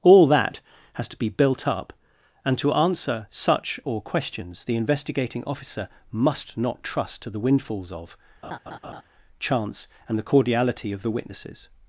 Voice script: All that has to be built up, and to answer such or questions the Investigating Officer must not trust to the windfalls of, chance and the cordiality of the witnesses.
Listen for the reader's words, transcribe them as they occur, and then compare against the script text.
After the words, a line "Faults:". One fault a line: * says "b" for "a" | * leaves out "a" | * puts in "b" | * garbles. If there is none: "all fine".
All that has to be built up, and to answer such or questions the Investigating Officer must not trust to the windfalls of, chance and the cordiality of the witnesses.
Faults:
all fine